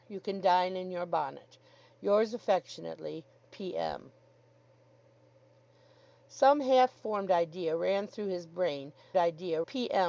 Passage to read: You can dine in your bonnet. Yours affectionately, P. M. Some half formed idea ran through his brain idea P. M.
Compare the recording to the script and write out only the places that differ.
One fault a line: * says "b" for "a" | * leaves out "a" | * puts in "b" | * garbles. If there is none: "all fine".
all fine